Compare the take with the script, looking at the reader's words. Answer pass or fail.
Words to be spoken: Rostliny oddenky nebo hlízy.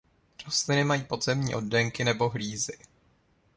fail